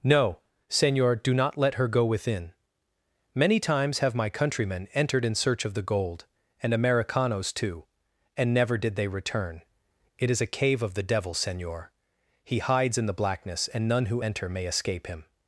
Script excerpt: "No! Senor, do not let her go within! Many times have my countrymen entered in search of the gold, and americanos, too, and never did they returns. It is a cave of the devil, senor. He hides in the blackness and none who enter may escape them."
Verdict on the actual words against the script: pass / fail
fail